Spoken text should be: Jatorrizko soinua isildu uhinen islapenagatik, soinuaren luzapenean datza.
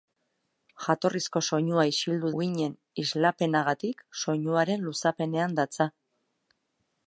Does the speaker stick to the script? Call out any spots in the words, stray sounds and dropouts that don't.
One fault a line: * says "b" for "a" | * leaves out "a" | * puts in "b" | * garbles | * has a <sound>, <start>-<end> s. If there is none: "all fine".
all fine